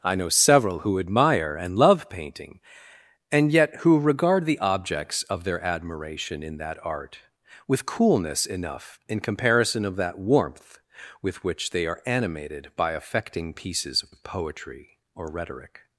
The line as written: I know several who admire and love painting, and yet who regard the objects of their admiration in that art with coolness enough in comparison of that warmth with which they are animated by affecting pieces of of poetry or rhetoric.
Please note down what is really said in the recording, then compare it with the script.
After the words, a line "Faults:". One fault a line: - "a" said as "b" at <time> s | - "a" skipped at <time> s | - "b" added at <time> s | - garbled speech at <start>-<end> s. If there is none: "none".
I know several who admire and love painting, and yet who regard the objects of their admiration in that art with coolness enough in comparison of that warmth with which they are animated by affecting pieces of of poetry or rhetoric.
Faults:
none